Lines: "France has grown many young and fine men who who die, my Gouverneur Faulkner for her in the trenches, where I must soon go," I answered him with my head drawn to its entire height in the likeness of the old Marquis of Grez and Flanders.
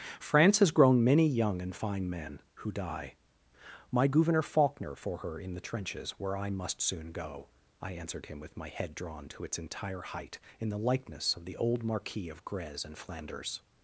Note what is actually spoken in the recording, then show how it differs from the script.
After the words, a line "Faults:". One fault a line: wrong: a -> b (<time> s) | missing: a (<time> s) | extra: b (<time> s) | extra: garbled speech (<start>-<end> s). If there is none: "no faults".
"France has grown many young and fine men who die, my Gouverneur Faulkner for her in the trenches, where I must soon go," I answered him with my head drawn to its entire height in the likeness of the old Marquis of Grez and Flanders.
Faults:
missing: who (2.7 s)